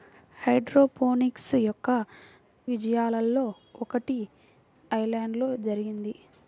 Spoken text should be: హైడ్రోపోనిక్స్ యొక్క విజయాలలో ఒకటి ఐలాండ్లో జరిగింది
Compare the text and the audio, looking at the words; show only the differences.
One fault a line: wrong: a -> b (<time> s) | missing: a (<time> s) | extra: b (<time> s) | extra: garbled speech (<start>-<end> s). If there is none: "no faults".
no faults